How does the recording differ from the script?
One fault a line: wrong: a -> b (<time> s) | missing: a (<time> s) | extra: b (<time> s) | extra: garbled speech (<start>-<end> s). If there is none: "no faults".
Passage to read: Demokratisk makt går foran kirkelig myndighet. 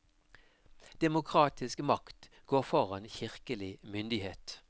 no faults